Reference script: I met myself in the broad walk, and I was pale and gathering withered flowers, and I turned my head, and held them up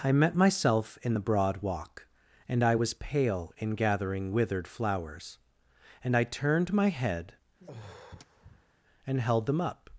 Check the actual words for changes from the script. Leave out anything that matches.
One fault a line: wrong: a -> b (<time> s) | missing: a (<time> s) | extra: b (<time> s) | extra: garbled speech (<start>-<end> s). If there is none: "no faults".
wrong: and -> in (3.6 s)